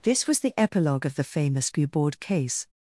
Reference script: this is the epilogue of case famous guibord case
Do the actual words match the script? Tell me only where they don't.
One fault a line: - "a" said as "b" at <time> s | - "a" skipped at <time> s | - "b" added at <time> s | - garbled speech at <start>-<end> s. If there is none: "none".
- "is" said as "was" at 0.2 s
- "case" said as "the" at 1.1 s